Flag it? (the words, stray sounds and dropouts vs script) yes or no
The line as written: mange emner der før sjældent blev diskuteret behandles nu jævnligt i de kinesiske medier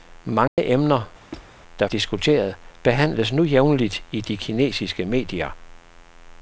yes